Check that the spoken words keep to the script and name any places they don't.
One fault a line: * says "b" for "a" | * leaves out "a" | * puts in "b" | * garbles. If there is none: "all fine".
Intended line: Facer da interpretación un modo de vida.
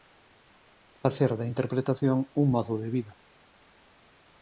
all fine